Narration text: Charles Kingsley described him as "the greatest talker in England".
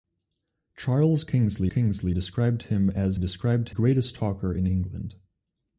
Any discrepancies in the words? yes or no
yes